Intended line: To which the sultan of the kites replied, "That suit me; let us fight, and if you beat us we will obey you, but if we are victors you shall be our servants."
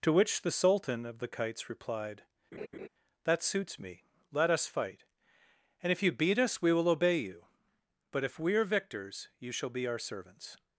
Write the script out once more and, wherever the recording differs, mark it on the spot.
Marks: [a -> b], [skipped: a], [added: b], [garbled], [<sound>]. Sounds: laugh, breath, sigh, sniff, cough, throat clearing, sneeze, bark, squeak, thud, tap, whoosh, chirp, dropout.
To which the sultan of the kites replied, [laugh] "That [suit -> suits] me; let us fight, and if you beat us we will obey you, but if we are victors you shall be our servants."